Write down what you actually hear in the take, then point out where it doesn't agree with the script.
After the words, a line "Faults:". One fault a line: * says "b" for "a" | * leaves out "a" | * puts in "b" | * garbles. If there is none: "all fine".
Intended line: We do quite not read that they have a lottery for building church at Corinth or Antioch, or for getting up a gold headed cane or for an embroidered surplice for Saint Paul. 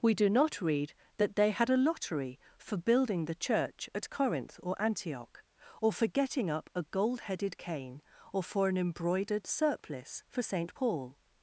We do not read that they had a lottery for building the church at Corinth or Antioch, or for getting up a gold headed cane or for an embroidered surplice for Saint Paul.
Faults:
* leaves out "quite"
* says "had" for "have"
* puts in "the"